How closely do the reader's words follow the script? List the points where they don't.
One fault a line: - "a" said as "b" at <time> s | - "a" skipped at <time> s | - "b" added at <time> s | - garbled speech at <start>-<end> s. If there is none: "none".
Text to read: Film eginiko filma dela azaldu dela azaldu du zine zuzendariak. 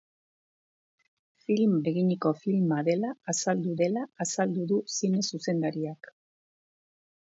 none